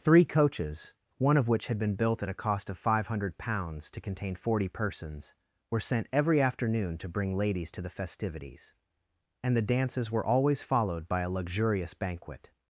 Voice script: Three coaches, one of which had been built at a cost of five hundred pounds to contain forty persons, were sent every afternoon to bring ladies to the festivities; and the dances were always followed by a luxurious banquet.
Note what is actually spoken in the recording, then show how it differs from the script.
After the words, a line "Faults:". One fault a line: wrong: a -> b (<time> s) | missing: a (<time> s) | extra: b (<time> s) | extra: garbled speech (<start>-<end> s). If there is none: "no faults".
Three coaches, one of which had been built at a cost of five hundred pounds to contain forty persons, were sent every afternoon to bring ladies to the festivities; and the dances were always followed by a luxurious banquet.
Faults:
no faults